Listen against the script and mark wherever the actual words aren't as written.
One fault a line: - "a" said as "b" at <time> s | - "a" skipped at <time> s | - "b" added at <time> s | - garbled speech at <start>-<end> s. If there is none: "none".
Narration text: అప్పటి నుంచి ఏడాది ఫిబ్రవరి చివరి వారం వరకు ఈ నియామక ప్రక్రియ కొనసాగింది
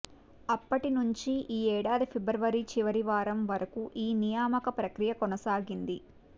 - "ఈ" added at 1.5 s